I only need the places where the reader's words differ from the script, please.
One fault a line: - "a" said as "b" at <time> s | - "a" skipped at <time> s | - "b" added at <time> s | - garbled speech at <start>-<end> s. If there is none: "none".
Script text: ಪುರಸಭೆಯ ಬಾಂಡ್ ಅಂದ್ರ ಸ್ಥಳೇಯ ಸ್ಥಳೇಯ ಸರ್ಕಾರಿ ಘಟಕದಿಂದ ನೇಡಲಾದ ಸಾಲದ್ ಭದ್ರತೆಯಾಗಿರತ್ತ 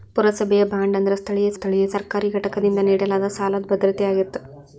none